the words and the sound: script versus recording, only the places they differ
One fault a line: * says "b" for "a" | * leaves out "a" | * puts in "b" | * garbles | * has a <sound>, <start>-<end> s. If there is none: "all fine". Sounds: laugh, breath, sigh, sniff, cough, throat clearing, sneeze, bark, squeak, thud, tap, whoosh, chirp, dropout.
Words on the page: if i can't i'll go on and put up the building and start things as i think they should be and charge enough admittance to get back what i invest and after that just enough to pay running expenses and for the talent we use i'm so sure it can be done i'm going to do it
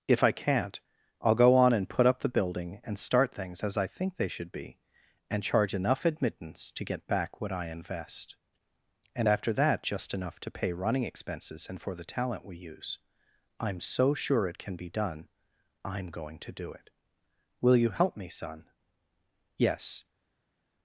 * puts in "will you help me son yes"